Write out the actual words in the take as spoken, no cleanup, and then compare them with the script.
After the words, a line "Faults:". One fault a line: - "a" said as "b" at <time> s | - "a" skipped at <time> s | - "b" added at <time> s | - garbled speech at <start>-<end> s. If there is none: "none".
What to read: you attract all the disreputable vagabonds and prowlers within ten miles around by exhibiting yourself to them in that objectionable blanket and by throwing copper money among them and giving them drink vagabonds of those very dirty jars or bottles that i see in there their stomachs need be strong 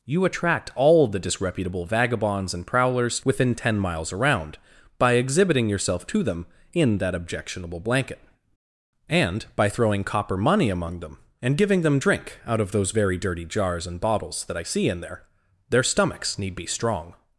you attract all the disreputable vagabonds and prowlers within ten miles around by exhibiting yourself to them in that objectionable blanket and by throwing copper money among them and giving them drink out of those very dirty jars and bottles that i see in there their stomachs need be strong
Faults:
- "vagabonds" said as "out" at 12.4 s
- "or" said as "and" at 13.9 s